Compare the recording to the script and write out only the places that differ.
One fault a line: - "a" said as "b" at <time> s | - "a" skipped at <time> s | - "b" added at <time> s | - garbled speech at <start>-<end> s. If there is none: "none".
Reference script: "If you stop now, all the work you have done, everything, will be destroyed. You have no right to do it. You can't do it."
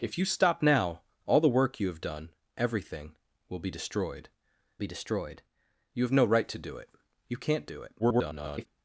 - "be destroyed" added at 4.8 s
- garbled speech at 8.0-8.7 s